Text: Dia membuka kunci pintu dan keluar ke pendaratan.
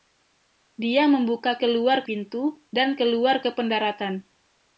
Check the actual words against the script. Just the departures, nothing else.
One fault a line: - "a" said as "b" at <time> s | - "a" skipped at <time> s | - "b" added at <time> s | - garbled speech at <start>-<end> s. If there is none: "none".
- "kunci" said as "keluar" at 1.6 s